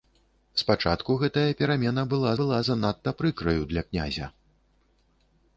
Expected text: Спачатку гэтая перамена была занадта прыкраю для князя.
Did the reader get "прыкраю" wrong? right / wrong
right